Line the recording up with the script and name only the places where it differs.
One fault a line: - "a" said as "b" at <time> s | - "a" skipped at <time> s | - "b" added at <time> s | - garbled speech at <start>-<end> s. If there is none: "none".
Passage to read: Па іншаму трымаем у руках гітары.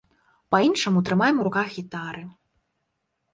none